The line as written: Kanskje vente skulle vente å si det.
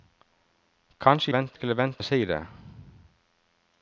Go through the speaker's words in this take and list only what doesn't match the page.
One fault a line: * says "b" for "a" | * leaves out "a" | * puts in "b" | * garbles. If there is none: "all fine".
all fine